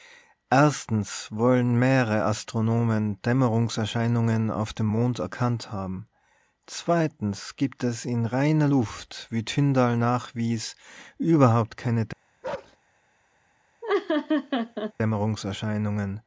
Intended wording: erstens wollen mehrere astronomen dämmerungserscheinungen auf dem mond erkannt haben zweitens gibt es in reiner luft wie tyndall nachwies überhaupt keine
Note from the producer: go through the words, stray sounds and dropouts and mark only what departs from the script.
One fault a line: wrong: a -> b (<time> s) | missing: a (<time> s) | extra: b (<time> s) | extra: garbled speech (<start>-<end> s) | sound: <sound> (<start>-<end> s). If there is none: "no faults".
sound: bark (12.4-12.8 s)
sound: laugh (13.8-14.9 s)